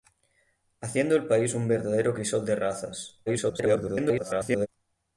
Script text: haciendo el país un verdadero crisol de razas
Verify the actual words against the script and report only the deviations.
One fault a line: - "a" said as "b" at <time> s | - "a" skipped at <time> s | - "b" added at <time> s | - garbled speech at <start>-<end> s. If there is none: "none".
- garbled speech at 3.3-4.7 s